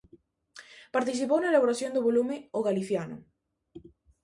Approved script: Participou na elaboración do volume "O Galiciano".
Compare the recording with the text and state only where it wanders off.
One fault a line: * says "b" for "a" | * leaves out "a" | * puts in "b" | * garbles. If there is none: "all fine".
all fine